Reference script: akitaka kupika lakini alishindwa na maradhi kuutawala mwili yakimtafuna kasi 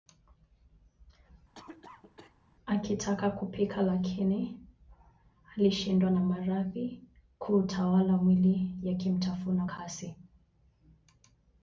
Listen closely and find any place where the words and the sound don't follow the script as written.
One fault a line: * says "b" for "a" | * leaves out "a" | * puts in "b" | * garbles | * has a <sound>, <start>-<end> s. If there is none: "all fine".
* has a cough, 1.5-2.4 s